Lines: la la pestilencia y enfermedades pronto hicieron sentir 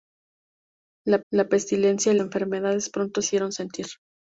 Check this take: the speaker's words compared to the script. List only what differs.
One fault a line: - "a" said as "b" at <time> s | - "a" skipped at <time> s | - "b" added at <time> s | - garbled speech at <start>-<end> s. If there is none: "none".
none